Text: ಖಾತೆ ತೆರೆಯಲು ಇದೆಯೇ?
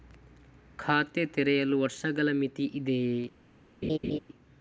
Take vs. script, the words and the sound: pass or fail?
fail